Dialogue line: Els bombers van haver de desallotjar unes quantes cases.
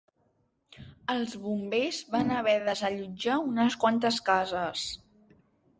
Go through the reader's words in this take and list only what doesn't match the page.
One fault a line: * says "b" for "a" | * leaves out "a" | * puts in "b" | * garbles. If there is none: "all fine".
all fine